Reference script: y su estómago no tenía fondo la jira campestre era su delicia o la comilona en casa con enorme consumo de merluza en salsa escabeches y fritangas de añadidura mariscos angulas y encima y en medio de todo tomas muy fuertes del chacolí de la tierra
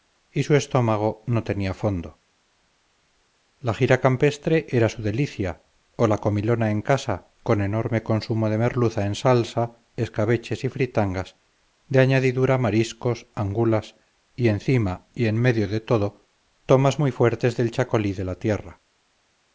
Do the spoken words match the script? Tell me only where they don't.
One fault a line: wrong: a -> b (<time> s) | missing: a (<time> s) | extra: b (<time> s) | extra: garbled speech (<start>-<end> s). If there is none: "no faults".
no faults